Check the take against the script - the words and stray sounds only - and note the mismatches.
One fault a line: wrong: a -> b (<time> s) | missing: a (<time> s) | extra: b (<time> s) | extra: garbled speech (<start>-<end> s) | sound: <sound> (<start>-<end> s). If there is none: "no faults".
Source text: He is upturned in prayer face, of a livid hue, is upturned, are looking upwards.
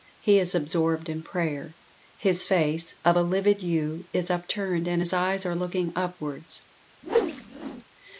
wrong: upturned -> absorbed (0.6 s)
extra: his (2.2 s)
extra: and his eyes (4.9 s)
sound: whoosh (7.0-7.8 s)